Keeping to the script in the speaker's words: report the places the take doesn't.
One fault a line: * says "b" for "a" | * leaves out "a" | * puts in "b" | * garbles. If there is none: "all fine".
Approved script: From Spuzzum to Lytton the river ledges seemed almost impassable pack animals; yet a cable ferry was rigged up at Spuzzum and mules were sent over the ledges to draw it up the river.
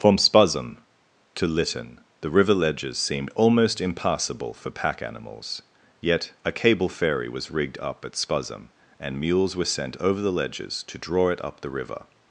* puts in "for"